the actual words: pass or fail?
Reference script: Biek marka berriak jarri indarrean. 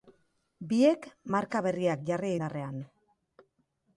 pass